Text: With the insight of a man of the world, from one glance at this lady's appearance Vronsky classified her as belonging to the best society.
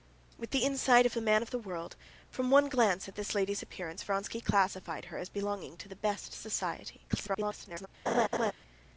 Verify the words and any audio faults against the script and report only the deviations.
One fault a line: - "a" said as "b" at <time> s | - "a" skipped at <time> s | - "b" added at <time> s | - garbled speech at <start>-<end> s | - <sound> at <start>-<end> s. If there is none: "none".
- garbled speech at 7.1-7.9 s
- laugh at 8.1-8.5 s